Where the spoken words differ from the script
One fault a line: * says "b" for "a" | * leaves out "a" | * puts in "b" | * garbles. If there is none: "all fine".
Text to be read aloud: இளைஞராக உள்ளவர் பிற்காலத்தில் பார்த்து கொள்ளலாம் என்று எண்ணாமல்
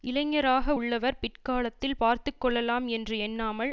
all fine